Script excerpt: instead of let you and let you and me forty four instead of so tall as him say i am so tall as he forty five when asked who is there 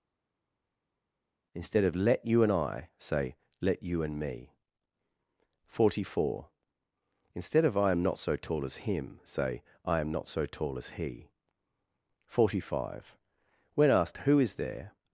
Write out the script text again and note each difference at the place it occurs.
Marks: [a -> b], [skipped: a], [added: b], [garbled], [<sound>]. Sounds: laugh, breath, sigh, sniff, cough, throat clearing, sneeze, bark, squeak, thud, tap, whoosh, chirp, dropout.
instead of let you and [added: i say] let you and me forty four instead of [added: i am not] so tall as him say i am [added: not] so tall as he forty five when asked who is there